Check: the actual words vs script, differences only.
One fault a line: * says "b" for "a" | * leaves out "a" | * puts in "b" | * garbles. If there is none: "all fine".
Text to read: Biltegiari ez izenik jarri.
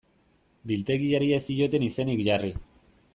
* puts in "zioten"